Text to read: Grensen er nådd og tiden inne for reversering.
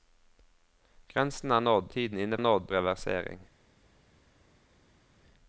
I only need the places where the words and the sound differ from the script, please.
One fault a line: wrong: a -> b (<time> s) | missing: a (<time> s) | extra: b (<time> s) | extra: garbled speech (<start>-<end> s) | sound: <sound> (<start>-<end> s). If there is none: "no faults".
missing: og (1.9 s)
wrong: for -> nådd (2.4 s)